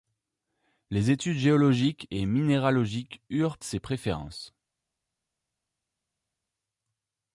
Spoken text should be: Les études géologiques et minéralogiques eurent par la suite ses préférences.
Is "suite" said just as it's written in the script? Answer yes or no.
no